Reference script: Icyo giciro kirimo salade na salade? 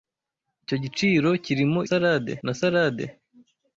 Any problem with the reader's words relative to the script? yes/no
no